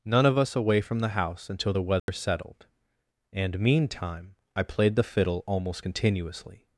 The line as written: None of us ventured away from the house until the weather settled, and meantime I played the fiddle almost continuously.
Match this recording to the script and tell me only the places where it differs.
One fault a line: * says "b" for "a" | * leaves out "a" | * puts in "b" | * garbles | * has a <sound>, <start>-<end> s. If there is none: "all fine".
* leaves out "ventured"
* has a dropout, 2.0-2.1 s